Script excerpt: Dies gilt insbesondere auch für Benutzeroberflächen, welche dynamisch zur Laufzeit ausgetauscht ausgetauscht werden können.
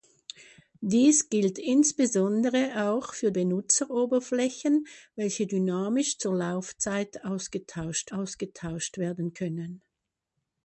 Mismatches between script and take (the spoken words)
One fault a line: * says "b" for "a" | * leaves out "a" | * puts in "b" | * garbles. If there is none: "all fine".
all fine